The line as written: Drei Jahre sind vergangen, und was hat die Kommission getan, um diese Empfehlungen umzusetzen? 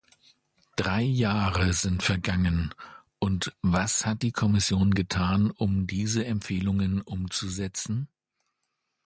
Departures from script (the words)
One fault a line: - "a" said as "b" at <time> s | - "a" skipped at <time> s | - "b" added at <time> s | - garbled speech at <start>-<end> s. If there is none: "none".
none